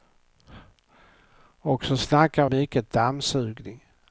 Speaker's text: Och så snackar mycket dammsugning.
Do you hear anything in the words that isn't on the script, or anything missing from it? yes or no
no